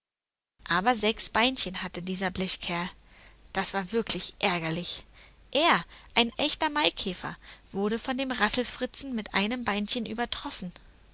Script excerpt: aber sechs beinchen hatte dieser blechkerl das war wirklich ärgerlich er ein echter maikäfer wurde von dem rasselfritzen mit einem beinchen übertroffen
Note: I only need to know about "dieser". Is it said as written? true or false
true